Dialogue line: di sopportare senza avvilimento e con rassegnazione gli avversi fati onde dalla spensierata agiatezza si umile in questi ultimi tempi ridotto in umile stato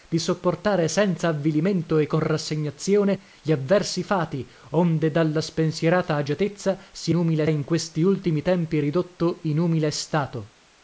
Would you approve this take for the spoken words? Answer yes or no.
yes